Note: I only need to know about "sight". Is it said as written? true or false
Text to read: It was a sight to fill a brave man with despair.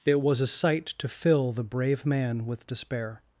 true